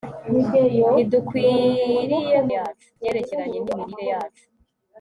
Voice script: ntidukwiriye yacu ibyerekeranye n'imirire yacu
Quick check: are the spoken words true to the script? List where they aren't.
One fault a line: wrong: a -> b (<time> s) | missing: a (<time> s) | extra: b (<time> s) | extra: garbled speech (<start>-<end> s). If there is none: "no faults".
no faults